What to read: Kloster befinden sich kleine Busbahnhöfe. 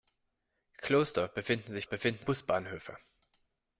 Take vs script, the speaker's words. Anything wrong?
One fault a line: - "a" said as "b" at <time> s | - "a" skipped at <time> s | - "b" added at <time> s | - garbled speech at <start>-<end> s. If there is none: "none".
- "kleine" said as "befinden" at 1.8 s